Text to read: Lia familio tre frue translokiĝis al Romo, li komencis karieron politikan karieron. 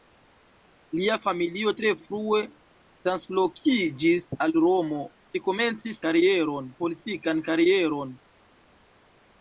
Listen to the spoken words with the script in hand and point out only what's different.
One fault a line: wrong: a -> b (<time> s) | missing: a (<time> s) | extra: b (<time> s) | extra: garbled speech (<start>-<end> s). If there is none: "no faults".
no faults